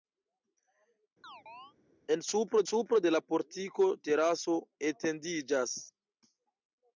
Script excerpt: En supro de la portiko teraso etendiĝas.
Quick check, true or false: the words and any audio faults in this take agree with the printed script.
false